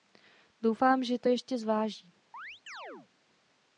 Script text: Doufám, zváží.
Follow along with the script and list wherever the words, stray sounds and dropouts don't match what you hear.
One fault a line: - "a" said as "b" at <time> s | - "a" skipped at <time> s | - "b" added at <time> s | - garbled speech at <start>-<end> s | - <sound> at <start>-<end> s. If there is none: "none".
- "že to ještě" added at 1.0 s
- chirp at 2.3-3.1 s